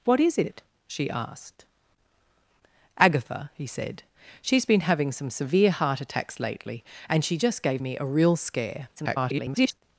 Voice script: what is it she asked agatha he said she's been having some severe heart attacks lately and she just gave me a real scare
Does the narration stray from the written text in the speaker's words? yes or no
yes